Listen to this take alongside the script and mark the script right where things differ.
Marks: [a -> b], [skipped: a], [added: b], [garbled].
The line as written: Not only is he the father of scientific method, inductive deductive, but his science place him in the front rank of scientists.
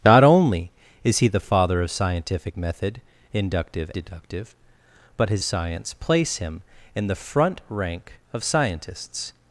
Not only is he the father of scientific method, inductive deductive, but his science place him in the front rank of scientists.